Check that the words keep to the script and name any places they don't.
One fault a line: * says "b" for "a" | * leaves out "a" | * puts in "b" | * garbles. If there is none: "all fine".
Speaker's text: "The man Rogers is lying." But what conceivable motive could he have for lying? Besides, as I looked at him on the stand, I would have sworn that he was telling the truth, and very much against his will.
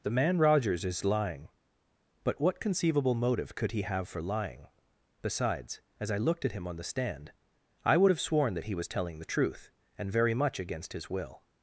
all fine